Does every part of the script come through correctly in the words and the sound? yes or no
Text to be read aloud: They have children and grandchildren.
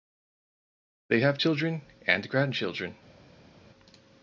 yes